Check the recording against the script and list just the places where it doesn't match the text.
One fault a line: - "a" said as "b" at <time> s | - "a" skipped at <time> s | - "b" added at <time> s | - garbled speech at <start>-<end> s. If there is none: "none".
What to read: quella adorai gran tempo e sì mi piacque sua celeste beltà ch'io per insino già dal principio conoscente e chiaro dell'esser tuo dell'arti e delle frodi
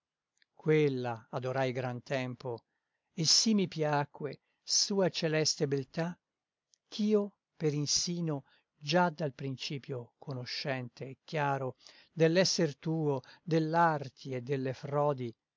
none